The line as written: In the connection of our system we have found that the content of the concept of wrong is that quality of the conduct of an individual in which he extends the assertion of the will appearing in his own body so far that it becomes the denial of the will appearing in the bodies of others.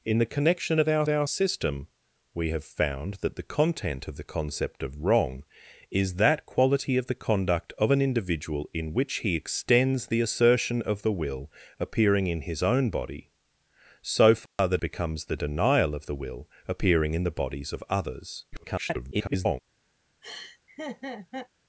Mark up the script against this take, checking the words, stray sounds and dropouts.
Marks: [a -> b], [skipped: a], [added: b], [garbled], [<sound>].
In the connection of our [added: our] system we have found that the content of the concept of wrong is that quality of the conduct of an individual in which he extends the assertion of the will appearing in his own body so far [dropout] that [skipped: it] becomes the denial of the will appearing in the bodies of others. [garbled] [laugh]